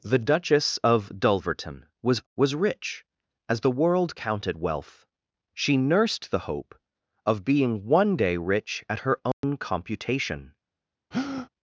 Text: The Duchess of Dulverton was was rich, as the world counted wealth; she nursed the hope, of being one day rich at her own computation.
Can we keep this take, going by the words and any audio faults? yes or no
no